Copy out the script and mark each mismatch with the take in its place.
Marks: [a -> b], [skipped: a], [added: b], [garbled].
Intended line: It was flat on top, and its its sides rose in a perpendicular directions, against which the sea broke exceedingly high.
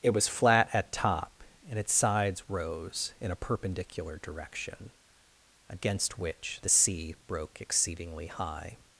It was flat [on -> at] top, and its [skipped: its] sides rose in a perpendicular [directions, -> direction] against which the sea broke exceedingly high.